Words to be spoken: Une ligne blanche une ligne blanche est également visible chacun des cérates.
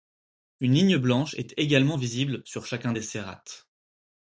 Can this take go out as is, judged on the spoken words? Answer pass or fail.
fail